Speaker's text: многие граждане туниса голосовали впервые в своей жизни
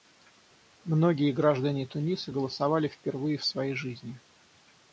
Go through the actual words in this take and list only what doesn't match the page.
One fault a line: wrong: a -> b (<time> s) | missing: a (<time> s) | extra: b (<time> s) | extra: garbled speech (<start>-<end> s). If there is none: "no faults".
no faults